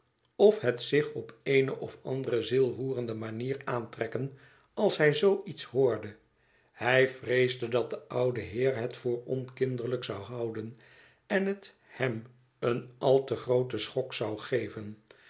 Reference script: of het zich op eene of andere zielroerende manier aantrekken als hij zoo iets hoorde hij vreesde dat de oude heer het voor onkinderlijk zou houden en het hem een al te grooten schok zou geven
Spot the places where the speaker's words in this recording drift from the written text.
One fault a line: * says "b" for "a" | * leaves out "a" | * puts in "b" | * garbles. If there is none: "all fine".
all fine